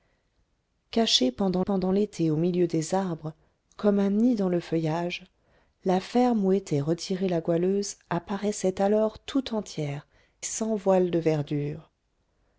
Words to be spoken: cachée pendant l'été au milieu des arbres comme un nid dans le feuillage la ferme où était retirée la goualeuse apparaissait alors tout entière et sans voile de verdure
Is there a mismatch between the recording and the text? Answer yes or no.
yes